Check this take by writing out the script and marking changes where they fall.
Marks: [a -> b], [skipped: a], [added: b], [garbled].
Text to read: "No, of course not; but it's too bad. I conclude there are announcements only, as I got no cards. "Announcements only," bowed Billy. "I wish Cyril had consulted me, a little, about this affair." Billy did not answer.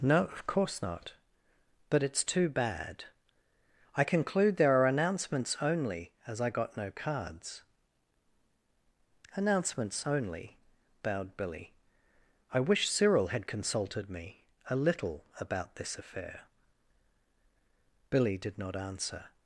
"No, of course not; but it's too bad. I conclude there are announcements only, as I got no cards. "Announcements only," bowed Billy. "I wish Cyril had consulted me, a little, about this affair." Billy did not answer.